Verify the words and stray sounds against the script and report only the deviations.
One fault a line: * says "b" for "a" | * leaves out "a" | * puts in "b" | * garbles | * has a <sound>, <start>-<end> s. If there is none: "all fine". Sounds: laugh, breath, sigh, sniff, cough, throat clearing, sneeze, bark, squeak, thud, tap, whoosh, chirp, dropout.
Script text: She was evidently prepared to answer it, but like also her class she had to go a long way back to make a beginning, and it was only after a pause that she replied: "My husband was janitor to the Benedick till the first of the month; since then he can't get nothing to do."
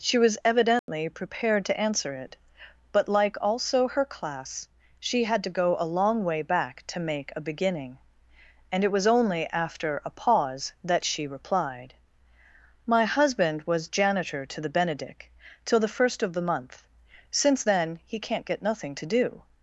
* has a dropout, 0.8-0.9 s